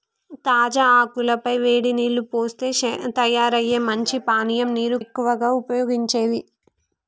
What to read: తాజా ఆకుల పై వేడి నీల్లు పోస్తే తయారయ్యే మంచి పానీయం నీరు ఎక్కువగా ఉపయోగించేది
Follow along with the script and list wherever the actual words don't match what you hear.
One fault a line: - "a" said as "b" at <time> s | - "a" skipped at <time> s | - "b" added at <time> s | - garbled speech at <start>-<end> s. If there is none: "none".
none